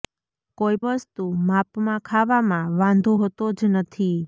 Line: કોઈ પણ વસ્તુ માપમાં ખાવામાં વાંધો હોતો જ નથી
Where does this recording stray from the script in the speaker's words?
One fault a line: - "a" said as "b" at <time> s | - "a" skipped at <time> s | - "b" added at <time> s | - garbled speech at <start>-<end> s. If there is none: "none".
- "પણ" skipped at 0.8 s